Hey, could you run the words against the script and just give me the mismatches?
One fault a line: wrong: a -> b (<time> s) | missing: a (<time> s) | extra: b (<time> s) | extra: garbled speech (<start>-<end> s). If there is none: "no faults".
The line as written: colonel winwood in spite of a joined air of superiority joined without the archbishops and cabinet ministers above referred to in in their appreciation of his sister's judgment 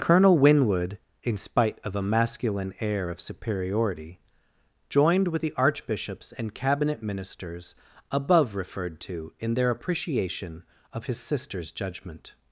wrong: joined -> masculine (2.0 s)
wrong: without -> with (5.3 s)
missing: in (9.5 s)